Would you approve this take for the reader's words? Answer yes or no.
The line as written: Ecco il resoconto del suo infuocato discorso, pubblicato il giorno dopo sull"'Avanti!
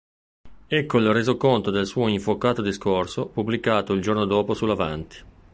yes